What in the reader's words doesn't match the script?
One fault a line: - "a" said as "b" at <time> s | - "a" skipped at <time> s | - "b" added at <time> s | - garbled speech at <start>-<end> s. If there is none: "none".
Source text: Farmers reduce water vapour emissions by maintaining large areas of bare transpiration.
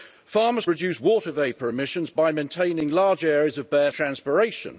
none